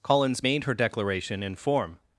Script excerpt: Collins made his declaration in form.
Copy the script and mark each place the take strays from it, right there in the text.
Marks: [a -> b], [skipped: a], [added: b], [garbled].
Collins made [his -> her] declaration in form.